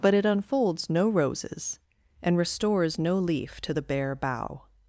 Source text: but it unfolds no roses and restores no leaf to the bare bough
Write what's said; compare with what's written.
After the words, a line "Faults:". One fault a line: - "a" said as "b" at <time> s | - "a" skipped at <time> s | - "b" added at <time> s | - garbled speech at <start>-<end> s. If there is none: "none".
but it unfolds no roses and restores no leaf to the bare bough
Faults:
none